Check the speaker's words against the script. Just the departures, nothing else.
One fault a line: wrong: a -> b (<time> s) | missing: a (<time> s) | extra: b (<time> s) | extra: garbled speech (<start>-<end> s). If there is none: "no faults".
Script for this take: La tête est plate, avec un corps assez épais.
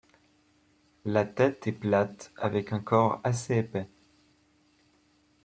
no faults